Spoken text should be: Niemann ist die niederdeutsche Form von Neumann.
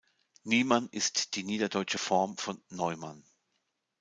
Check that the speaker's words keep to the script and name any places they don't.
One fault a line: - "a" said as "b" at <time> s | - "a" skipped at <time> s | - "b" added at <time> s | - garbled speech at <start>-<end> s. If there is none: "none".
none